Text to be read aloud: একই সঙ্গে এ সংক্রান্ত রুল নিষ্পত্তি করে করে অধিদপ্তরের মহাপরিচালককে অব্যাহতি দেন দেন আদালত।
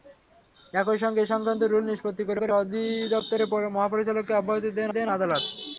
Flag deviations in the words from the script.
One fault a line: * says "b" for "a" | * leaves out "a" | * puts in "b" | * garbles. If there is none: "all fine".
all fine